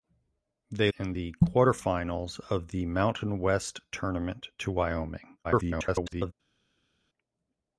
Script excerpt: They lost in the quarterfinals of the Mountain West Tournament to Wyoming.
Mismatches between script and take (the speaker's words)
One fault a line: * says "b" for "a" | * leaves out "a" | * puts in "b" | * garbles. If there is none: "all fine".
* leaves out "lost"
* garbles